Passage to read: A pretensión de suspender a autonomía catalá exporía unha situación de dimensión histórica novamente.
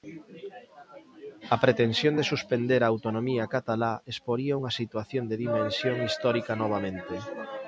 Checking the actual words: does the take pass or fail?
pass